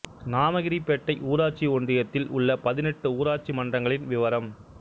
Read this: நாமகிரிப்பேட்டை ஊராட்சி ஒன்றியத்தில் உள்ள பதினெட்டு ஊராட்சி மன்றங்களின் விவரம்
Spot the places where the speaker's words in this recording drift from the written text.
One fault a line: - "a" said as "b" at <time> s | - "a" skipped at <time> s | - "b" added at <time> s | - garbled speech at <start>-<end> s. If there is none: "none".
none